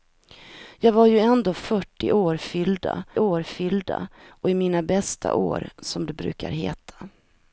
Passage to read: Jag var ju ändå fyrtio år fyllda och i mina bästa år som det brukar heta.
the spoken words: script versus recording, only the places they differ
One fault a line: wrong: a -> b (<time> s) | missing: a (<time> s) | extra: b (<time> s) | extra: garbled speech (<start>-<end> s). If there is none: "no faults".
extra: år fyllda (3.2 s)